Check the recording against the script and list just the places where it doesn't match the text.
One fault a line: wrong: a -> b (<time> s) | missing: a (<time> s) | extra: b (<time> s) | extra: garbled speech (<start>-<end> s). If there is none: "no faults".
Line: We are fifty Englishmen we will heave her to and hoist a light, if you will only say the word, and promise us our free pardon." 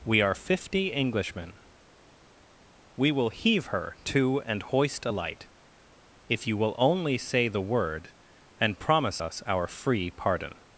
no faults